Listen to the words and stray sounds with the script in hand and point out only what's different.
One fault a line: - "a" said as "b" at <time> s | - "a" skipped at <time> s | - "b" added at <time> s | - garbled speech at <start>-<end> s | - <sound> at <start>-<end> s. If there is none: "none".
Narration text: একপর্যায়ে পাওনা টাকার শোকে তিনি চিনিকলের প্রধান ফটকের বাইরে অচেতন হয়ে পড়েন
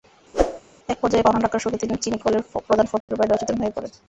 - whoosh at 0.3-0.6 s
- dropout at 3.0-3.1 s